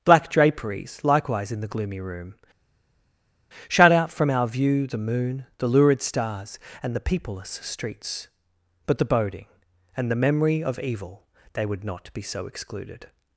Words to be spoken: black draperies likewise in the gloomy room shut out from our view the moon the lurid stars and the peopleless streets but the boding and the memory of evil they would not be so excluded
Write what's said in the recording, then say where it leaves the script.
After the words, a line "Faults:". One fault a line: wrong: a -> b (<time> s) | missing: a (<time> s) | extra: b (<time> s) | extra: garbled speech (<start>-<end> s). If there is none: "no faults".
black draperies likewise in the gloomy room shut out from our view the moon the lurid stars and the peopleless streets but the boding and the memory of evil they would not be so excluded
Faults:
no faults